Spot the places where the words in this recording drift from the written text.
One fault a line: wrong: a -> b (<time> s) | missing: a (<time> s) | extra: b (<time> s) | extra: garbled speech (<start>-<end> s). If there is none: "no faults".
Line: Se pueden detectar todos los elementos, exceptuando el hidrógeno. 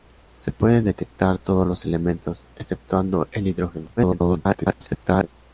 extra: garbled speech (4.0-5.3 s)